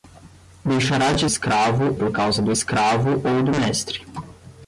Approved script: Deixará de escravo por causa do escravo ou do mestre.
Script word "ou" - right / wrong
right